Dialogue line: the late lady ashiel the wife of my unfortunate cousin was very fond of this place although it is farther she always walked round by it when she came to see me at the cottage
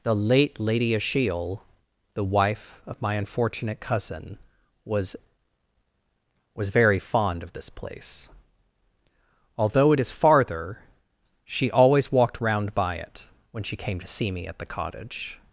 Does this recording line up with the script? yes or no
no